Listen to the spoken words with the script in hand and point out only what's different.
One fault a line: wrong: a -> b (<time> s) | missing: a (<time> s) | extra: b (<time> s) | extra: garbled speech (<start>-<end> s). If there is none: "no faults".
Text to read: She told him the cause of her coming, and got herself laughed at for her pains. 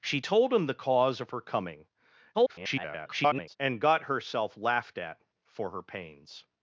extra: garbled speech (2.3-3.6 s)